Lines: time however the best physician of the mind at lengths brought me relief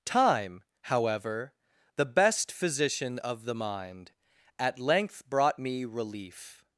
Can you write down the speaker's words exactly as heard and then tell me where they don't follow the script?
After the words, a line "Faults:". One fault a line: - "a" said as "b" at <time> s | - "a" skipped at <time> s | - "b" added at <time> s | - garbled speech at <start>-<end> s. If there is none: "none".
time however the best physician of the mind at length brought me relief
Faults:
- "lengths" said as "length" at 4.8 s